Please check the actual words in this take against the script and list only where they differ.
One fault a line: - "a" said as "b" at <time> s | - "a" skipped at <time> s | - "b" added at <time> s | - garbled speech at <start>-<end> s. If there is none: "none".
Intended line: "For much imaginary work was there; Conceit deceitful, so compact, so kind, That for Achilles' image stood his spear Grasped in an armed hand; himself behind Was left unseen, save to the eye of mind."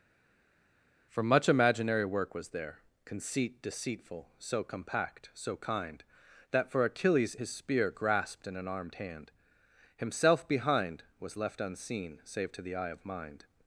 - "image stood" skipped at 7.4 s